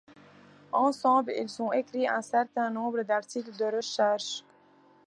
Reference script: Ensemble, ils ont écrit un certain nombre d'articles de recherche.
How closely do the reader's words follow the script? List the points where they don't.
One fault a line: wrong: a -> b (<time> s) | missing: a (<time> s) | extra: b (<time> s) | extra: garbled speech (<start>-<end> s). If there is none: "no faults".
no faults